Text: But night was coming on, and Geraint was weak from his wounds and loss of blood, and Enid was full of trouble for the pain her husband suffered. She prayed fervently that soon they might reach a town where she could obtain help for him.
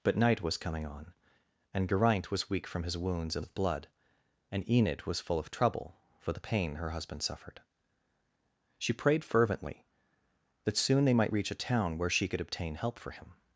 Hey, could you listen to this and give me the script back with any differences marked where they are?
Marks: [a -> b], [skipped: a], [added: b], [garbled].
But night was coming on, and Geraint was weak from his wounds and [skipped: loss] of blood, and Enid was full of trouble for the pain her husband suffered. She prayed fervently that soon they might reach a town where she could obtain help for him.